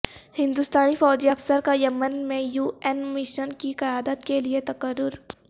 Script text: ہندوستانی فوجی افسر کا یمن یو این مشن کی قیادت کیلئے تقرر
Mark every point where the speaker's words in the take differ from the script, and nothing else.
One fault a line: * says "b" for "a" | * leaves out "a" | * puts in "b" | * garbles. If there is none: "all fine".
* puts in "میں"